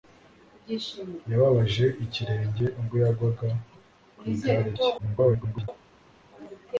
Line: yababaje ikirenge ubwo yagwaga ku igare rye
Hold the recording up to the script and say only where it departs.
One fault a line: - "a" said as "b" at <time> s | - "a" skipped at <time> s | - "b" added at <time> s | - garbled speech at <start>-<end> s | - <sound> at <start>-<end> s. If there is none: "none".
- garbled speech at 5.0-5.7 s